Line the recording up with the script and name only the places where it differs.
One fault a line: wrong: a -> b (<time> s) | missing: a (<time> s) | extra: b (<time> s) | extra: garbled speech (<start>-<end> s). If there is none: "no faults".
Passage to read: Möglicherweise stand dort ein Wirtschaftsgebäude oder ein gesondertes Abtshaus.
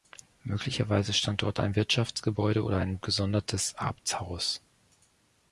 no faults